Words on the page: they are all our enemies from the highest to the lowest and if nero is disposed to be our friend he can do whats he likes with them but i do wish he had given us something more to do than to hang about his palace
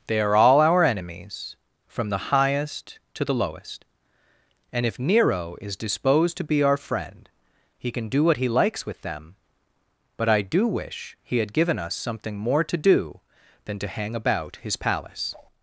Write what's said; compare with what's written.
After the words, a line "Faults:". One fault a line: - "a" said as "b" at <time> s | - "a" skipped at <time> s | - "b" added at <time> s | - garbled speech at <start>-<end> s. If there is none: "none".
they are all our enemies from the highest to the lowest and if nero is disposed to be our friend he can do what he likes with them but i do wish he had given us something more to do than to hang about his palace
Faults:
- "whats" said as "what" at 8.2 s